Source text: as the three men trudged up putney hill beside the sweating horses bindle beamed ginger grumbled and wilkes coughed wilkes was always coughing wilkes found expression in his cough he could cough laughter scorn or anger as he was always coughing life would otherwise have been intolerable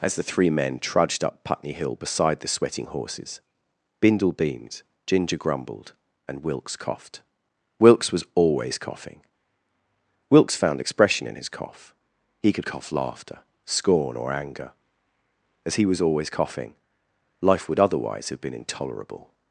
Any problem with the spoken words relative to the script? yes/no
no